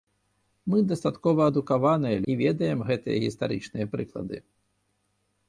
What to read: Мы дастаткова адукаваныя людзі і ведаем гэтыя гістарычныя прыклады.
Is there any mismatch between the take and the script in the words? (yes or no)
yes